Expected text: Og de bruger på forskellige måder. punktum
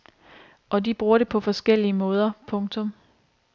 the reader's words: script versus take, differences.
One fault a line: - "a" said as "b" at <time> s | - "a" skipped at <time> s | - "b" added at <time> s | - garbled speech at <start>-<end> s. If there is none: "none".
- "det" added at 1.2 s